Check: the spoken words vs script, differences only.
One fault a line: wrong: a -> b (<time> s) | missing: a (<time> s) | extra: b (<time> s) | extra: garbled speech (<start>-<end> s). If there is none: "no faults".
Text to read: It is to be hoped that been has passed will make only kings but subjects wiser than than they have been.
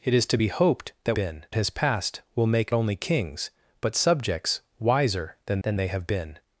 no faults